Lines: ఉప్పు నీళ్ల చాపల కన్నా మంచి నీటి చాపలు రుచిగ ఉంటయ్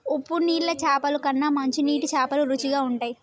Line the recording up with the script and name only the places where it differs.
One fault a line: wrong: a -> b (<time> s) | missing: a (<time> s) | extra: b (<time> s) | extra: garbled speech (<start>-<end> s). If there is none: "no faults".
no faults